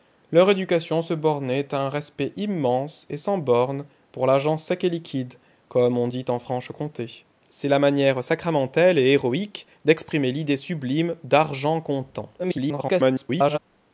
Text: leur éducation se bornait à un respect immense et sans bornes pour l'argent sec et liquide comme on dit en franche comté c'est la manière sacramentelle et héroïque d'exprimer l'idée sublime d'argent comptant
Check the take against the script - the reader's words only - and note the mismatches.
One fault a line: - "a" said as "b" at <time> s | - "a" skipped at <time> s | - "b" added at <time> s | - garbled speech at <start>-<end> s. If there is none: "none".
- garbled speech at 12.4-13.6 s